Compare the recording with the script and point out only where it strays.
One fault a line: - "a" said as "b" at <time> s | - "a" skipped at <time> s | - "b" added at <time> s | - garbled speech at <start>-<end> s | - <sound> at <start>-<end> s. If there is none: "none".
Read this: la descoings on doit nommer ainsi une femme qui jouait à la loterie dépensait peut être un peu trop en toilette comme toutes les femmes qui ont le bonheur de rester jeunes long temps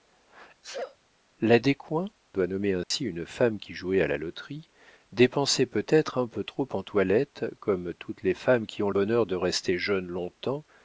- sneeze at 0.6-1.0 s
- "on" skipped at 2.1 s
- dropout at 2.8-2.9 s
- "le" skipped at 8.9 s